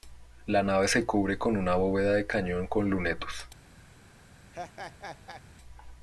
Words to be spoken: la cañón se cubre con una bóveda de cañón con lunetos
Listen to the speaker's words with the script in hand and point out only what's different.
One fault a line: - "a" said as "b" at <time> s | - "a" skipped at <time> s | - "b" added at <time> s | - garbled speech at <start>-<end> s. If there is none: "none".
- "cañón" said as "nave" at 0.6 s